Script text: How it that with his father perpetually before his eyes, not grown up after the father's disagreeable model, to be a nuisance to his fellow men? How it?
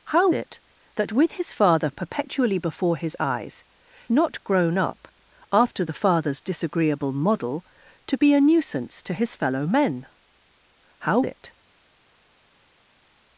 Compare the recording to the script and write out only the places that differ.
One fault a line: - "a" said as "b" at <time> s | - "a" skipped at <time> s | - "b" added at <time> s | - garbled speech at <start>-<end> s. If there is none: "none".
none